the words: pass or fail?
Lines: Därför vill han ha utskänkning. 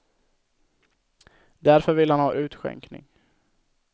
pass